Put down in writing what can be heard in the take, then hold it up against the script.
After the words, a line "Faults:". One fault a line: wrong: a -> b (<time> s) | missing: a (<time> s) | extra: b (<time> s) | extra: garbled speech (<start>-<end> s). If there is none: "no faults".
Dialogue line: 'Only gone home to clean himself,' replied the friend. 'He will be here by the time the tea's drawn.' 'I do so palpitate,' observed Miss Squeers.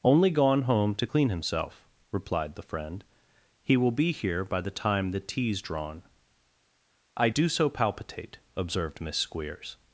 'Only gone home to clean himself,' replied the friend. 'He will be here by the time the tea's drawn.' 'I do so palpitate,' observed Miss Squeers.
Faults:
no faults